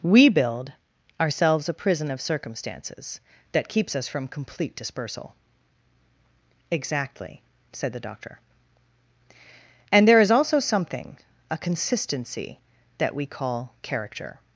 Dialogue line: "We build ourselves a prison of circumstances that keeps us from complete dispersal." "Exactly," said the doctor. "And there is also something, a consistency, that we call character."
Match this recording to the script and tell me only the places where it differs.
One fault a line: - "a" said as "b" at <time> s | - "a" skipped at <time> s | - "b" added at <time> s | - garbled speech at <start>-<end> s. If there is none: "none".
none